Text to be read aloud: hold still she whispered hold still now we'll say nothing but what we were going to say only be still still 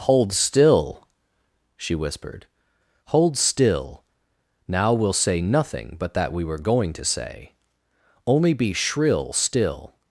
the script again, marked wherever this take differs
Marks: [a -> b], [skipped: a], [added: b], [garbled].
hold still she whispered hold still now we'll say nothing but [what -> that] we were going to say only be [still -> shrill] still